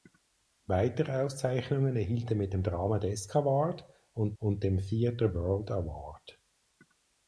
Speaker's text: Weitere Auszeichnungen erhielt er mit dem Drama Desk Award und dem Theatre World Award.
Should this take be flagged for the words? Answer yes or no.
yes